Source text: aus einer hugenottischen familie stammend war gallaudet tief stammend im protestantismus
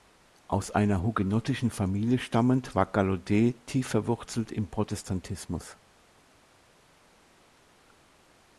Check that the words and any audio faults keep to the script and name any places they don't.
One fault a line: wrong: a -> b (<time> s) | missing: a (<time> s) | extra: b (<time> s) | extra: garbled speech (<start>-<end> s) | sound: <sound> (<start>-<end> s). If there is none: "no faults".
wrong: stammend -> verwurzelt (3.9 s)